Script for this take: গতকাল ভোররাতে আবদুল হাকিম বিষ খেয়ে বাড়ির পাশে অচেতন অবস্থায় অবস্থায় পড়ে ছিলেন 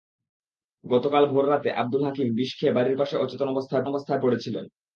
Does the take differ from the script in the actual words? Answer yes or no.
no